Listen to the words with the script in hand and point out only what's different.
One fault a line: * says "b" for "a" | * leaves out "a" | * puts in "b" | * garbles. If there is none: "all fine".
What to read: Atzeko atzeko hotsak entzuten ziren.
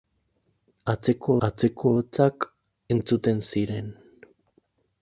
all fine